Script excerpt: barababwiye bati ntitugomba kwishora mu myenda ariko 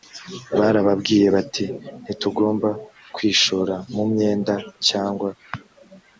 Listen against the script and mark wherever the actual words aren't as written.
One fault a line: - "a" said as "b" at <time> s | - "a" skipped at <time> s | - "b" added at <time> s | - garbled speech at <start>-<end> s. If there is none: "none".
- "ariko" said as "cyangwa" at 4.9 s